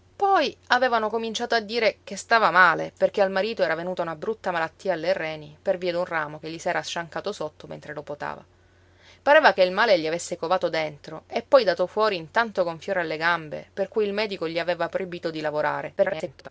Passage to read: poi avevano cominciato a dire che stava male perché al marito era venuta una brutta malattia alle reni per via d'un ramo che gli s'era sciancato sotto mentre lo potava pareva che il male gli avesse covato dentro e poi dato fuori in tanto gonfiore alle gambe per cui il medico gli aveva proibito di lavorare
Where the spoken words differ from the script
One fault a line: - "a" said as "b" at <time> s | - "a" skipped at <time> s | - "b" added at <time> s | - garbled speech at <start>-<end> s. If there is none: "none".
- garbled speech at 16.0-16.5 s